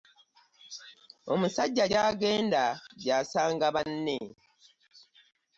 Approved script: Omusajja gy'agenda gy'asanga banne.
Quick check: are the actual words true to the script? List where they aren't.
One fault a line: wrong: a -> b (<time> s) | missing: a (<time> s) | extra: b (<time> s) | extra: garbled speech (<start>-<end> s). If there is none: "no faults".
no faults